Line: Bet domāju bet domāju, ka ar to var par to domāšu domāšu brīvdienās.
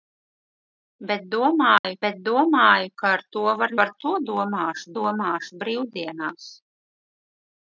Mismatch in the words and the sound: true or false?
true